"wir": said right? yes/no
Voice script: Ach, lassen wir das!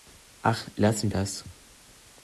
no